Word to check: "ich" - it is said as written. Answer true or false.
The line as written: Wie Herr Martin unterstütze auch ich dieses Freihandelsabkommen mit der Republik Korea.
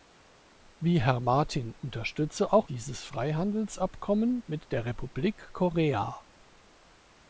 false